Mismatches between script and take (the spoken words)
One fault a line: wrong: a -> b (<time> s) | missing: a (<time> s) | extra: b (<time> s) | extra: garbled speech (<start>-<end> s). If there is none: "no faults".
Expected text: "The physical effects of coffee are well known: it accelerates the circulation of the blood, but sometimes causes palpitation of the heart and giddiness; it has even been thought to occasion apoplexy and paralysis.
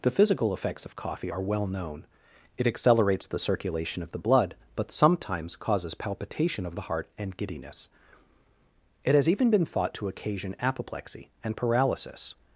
no faults